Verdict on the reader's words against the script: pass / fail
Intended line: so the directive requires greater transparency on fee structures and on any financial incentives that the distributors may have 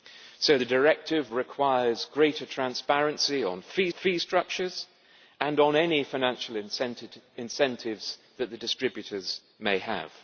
fail